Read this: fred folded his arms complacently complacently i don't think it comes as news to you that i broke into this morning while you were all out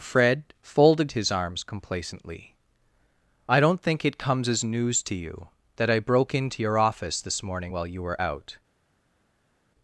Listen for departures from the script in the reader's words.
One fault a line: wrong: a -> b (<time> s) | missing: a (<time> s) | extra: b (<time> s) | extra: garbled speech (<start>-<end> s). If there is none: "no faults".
missing: complacently (2.5 s)
extra: your office (6.6 s)
missing: all (8.2 s)